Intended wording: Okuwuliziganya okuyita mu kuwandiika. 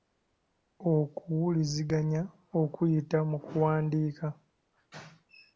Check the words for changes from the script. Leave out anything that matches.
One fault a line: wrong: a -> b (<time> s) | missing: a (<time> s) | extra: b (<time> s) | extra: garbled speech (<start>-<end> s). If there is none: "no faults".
no faults